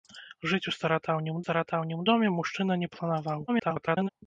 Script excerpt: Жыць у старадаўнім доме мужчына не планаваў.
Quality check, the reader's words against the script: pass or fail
fail